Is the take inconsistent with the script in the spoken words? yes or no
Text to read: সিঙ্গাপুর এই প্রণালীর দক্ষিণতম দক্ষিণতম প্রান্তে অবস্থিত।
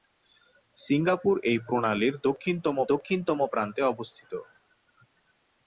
no